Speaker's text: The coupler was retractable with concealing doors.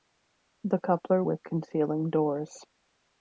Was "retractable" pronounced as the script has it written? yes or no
no